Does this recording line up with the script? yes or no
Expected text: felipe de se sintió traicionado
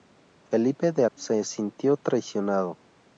yes